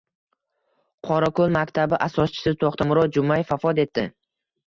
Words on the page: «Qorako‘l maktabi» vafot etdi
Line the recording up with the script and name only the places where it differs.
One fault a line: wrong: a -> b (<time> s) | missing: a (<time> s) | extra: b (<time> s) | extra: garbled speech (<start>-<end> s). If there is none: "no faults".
extra: asoschisi To‘xtamurod Jumayev (2.1 s)